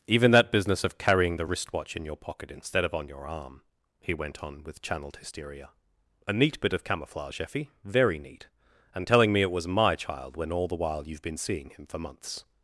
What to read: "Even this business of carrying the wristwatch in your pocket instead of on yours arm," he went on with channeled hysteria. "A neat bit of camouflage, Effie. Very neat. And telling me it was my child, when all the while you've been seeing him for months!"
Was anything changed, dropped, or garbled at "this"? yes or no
yes